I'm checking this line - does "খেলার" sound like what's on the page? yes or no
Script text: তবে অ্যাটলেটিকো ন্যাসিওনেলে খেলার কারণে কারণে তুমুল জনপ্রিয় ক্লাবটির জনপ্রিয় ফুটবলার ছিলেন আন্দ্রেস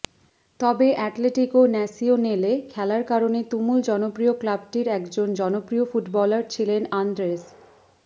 yes